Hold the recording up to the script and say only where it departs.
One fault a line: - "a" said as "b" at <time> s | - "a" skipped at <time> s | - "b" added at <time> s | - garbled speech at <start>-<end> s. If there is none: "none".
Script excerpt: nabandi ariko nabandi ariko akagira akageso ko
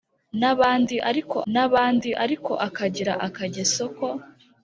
none